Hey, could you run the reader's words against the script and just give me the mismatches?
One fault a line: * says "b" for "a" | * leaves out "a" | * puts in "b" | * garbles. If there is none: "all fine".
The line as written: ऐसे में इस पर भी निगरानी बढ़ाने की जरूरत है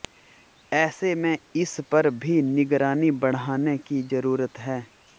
all fine